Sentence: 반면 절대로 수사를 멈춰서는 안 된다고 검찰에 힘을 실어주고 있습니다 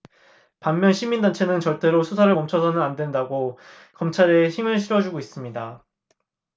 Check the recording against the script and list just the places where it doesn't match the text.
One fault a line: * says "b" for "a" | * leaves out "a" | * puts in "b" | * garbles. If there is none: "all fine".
* puts in "시민단체는"